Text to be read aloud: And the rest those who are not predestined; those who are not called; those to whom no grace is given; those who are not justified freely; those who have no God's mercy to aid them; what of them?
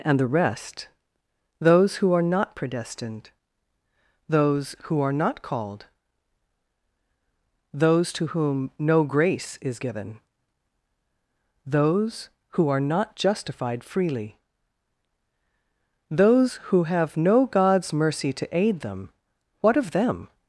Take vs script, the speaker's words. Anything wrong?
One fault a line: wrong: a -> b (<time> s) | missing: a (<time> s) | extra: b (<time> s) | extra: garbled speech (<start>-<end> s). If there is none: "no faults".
no faults